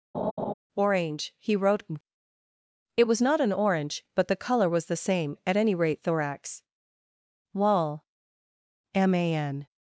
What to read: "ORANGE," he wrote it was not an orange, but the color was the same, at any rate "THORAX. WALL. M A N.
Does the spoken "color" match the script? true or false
true